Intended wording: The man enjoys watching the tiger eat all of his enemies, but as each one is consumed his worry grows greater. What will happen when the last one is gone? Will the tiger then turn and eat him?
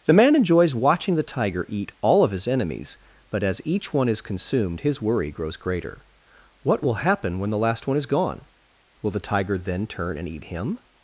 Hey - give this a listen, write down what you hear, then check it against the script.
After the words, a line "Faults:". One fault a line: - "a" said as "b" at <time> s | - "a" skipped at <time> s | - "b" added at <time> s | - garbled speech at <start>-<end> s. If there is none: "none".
The man enjoys watching the tiger eat all of his enemies, but as each one is consumed his worry grows greater. What will happen when the last one is gone? Will the tiger then turn and eat him?
Faults:
none